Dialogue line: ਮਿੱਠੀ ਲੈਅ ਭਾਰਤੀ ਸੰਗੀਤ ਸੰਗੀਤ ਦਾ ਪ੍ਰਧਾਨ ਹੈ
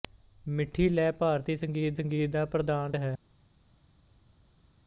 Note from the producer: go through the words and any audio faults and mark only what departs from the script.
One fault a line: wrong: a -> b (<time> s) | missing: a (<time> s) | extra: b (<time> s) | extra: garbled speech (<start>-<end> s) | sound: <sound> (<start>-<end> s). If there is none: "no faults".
no faults